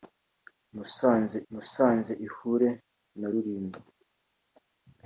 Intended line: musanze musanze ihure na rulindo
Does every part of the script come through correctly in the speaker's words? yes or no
yes